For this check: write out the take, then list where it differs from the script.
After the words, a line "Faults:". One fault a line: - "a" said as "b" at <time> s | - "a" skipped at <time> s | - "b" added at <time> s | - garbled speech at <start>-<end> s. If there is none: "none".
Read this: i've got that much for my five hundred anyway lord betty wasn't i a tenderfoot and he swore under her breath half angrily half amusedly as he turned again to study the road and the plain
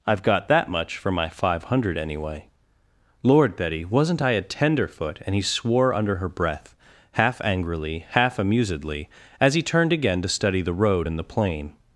i've got that much for my five hundred anyway lord betty wasn't i a tenderfoot and he swore under her breath half angrily half amusedly as he turned again to study the road and the plain
Faults:
none